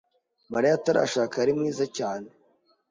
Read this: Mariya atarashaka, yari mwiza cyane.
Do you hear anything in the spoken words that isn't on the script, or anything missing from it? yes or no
no